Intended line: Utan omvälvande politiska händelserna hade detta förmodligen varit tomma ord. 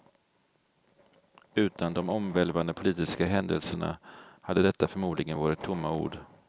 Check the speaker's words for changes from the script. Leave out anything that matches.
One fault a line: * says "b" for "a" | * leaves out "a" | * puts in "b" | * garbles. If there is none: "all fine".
* puts in "de"